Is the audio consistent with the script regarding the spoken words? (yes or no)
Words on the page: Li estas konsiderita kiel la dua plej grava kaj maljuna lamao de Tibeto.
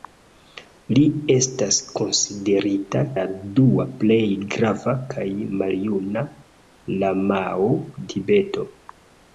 no